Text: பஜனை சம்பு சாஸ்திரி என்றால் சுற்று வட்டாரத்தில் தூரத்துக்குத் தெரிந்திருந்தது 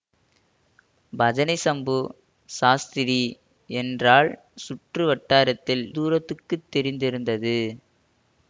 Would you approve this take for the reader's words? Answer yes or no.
yes